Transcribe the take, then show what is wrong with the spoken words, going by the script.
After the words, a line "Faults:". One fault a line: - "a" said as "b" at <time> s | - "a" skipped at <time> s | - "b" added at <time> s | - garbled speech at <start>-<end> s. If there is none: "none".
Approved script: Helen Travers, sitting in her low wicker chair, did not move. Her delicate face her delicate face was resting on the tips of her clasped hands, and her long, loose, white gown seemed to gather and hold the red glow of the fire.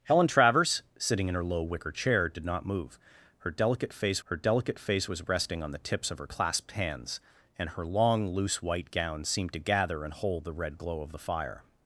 Helen Travers, sitting in her low wicker chair, did not move. Her delicate face her delicate face was resting on the tips of her clasped hands, and her long, loose, white gown seemed to gather and hold the red glow of the fire.
Faults:
none